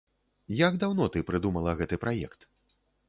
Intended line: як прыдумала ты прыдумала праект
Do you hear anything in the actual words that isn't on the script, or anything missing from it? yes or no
yes